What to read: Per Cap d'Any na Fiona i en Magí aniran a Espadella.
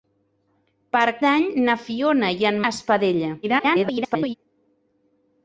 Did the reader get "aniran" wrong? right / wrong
wrong